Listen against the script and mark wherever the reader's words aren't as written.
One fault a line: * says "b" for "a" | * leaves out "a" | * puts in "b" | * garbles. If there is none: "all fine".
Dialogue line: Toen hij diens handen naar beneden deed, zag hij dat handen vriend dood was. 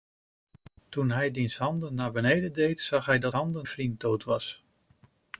all fine